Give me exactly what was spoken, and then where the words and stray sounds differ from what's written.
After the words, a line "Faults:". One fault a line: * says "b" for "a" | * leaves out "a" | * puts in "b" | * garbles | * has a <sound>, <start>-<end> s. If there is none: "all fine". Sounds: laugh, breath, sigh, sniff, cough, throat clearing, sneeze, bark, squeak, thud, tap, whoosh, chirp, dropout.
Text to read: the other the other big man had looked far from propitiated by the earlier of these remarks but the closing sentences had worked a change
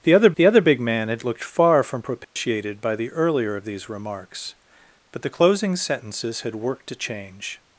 the other the other big man had looked far from propitiated by the earlier of these remarks but the closing sentences had worked a change
Faults:
* has a dropout, 2.2-2.4 s